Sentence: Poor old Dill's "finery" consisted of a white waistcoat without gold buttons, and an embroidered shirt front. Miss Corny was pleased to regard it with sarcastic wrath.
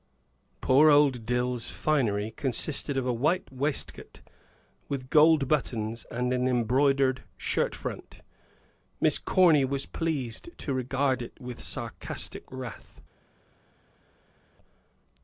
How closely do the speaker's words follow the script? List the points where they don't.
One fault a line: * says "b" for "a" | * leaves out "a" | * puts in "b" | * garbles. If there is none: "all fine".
* says "with" for "without"